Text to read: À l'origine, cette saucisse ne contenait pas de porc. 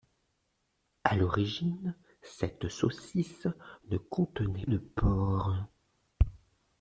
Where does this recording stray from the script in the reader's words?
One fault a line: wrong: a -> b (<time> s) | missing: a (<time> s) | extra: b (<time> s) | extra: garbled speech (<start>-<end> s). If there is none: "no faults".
missing: pas (4.6 s)